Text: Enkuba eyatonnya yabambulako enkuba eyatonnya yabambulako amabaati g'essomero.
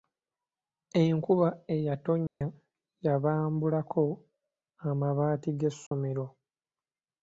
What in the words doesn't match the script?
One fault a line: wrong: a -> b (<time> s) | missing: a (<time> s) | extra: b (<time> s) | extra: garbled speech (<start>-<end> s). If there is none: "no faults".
missing: enkuba eyatonnya yabambulako (4.0 s)